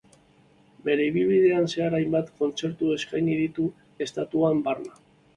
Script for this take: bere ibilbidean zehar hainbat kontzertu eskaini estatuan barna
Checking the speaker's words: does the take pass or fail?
fail